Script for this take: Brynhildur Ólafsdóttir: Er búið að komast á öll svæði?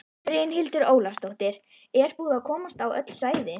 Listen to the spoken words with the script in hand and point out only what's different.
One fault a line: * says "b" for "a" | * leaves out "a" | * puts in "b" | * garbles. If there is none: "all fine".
all fine